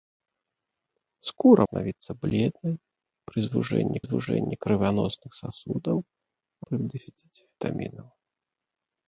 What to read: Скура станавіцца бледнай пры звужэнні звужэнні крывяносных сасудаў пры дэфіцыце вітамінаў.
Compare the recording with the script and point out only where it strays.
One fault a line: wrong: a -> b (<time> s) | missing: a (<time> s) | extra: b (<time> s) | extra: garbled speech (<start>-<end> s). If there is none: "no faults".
no faults